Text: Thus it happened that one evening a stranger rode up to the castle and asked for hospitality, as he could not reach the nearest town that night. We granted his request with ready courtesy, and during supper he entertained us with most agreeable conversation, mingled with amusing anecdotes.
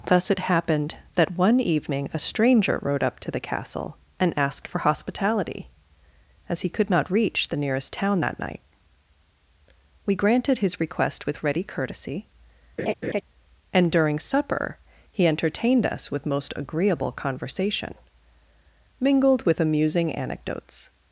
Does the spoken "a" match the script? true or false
true